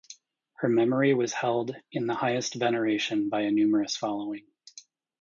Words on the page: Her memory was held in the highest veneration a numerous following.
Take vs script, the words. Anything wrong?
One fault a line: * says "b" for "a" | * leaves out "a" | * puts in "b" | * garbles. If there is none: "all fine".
* puts in "by"